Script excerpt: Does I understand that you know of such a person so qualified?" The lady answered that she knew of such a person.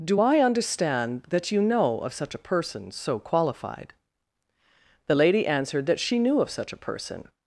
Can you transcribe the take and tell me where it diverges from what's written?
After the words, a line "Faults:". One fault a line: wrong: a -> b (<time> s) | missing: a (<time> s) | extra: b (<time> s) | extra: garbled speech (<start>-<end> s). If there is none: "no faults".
Do I understand that you know of such a person so qualified?" The lady answered that she knew of such a person.
Faults:
wrong: Does -> Do (0.0 s)